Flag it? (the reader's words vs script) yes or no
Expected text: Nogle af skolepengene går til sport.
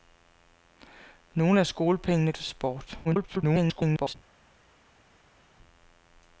yes